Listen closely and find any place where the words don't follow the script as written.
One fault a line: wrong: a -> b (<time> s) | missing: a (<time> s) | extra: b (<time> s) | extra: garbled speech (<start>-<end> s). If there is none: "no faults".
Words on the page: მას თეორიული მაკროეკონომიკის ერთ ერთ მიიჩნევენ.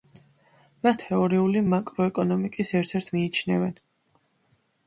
no faults